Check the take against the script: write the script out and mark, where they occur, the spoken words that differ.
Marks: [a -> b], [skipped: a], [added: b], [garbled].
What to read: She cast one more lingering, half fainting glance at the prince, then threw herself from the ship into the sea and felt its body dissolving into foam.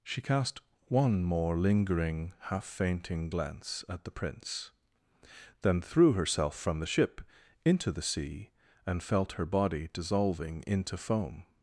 She cast one more lingering, half fainting glance at the prince, then threw herself from the ship into the sea and felt [its -> her] body dissolving into foam.